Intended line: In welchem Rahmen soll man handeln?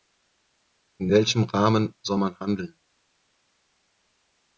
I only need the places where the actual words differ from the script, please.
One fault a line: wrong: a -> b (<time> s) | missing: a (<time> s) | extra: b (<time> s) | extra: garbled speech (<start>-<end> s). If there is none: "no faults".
no faults